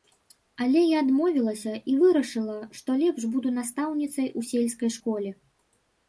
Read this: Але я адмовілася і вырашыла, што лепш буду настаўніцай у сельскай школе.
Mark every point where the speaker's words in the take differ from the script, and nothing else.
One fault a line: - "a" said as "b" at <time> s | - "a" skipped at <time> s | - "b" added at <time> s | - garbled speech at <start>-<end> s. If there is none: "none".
none